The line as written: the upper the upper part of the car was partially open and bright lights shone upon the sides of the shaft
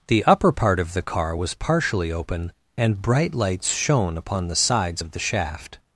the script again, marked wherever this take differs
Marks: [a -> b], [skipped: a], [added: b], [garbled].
the upper [skipped: the upper] part of the car was partially open and bright lights shone upon the sides of the shaft